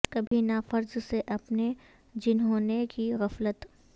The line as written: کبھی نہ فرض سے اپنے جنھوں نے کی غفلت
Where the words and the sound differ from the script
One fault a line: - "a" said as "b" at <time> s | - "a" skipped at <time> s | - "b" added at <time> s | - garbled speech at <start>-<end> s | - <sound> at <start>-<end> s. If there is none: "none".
- dropout at 0.3-0.3 s